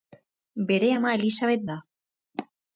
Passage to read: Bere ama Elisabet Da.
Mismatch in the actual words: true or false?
false